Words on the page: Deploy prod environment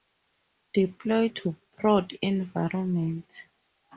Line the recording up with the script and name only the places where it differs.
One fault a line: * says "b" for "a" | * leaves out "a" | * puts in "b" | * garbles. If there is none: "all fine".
* puts in "to"